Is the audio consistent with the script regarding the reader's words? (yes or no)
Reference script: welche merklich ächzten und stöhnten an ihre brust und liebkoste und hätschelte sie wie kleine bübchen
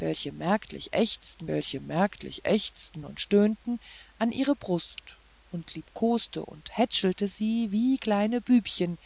no